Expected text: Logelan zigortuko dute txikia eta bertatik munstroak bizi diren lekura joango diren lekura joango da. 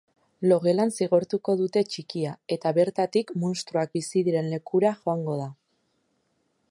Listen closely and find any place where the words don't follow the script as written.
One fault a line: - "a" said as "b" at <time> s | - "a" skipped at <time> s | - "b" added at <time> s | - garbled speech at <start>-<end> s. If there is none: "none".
- "diren lekura joango" skipped at 5.4 s